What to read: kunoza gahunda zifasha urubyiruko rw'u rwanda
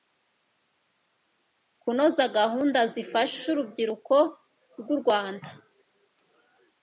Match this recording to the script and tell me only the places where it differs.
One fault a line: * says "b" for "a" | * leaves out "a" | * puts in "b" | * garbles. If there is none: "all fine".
all fine